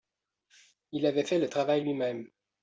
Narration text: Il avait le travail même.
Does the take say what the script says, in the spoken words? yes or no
no